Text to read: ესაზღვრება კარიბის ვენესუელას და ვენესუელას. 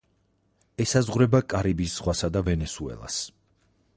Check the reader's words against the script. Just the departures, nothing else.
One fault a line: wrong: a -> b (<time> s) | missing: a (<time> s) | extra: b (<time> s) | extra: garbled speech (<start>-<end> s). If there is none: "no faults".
wrong: ვენესუელას -> ზღვასა (2.0 s)